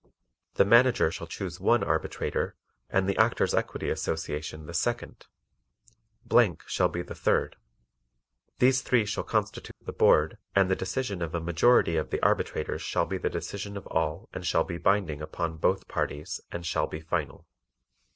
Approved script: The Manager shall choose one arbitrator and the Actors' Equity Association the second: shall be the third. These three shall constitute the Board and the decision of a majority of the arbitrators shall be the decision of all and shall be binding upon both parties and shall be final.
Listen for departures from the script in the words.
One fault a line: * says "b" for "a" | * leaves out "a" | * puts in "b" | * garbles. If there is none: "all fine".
all fine